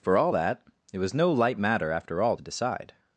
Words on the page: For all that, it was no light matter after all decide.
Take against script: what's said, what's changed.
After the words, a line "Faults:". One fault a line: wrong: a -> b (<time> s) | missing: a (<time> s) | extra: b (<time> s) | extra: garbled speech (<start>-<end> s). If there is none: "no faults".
For all that, it was no light matter after all decide.
Faults:
no faults